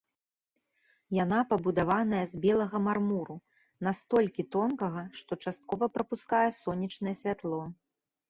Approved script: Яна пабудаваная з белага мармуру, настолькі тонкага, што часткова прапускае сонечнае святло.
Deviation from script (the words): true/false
false